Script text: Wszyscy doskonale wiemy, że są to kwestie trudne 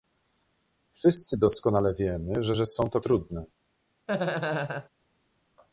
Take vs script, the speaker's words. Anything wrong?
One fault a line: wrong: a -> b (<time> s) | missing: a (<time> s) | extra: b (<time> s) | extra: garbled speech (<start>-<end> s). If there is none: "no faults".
extra: że (2.5 s)
missing: kwestie (3.0 s)